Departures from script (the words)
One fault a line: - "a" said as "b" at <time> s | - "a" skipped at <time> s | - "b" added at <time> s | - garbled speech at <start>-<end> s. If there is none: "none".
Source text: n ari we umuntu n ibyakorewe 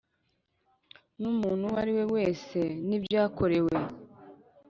- "umuntu uwo" added at 1.3 s
- "umuntu" said as "wese" at 2.1 s